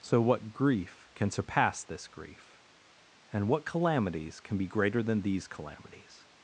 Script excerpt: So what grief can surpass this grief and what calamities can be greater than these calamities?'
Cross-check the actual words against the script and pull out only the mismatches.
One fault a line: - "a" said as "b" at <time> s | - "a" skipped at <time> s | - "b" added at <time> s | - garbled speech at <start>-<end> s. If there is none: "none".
none